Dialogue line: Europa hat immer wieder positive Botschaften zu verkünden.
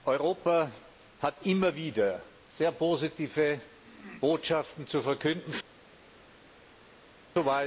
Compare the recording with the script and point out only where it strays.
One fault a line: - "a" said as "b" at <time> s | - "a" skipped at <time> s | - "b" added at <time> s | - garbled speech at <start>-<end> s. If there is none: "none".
- "sehr" added at 2.5 s